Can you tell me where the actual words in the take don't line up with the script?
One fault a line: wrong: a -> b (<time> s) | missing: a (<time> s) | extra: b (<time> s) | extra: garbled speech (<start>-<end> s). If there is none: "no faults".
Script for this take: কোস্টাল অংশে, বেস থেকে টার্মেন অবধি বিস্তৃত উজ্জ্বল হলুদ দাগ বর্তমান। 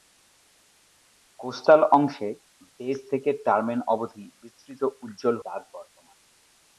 missing: হলুদ (5.3 s)